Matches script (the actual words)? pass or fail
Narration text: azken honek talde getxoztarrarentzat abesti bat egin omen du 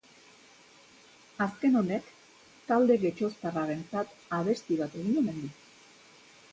pass